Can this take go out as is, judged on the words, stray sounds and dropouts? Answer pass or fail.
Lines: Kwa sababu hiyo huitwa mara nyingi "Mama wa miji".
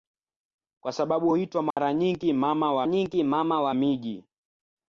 fail